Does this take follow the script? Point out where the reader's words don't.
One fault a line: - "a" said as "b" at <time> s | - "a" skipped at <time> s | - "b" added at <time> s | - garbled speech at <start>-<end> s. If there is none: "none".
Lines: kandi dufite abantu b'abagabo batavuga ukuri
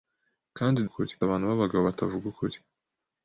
- "dufite" said as "ukuri" at 0.9 s